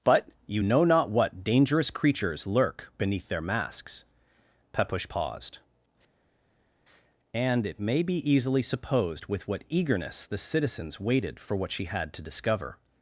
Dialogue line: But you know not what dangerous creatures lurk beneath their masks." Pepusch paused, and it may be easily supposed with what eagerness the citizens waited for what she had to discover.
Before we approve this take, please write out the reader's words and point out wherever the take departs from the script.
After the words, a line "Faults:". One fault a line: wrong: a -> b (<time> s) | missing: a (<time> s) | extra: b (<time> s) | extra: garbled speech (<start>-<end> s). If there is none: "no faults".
But you know not what dangerous creatures lurk beneath their masks." Pepusch paused, and it may be easily supposed with what eagerness the citizens waited for what she had to discover.
Faults:
no faults